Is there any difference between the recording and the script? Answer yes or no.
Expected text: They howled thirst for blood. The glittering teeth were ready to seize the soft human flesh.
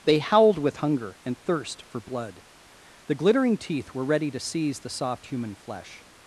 yes